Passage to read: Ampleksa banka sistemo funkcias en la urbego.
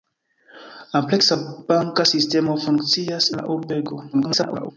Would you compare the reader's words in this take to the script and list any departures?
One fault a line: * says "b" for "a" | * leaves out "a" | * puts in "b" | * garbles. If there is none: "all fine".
* leaves out "en"
* garbles